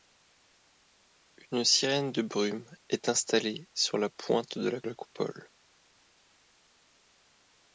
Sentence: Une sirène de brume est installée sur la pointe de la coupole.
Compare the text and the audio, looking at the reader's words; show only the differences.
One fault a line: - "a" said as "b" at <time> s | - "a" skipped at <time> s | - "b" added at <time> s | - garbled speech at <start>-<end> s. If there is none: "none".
- "la" added at 4.8 s